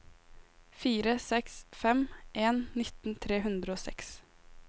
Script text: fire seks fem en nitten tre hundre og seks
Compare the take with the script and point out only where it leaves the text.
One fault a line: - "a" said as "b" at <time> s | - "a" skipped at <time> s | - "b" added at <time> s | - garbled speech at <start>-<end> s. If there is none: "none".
none